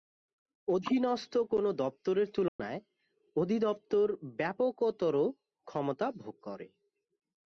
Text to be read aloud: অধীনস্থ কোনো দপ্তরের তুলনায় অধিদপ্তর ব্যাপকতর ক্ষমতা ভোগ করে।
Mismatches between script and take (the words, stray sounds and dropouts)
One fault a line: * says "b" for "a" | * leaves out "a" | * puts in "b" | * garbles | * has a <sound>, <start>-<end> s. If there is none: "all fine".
* has a dropout, 2.5-2.6 s